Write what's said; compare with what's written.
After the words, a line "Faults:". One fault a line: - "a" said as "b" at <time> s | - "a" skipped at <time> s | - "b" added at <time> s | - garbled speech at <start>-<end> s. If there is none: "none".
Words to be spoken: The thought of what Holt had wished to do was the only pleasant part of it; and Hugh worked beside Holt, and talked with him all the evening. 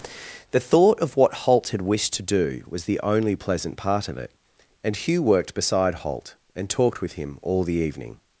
The thought of what Holt had wished to do was the only pleasant part of it; and Hugh worked beside Holt, and talked with him all the evening.
Faults:
none